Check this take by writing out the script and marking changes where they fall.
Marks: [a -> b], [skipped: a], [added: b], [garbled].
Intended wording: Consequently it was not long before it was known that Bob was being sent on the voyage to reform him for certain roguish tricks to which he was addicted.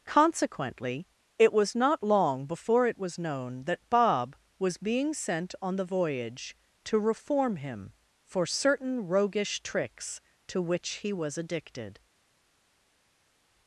Consequently it was not long before it was known that Bob was being sent on the voyage to reform him for certain roguish tricks to which he was addicted.